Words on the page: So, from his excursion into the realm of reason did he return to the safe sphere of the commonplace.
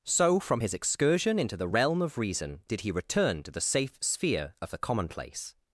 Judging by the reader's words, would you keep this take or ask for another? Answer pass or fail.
pass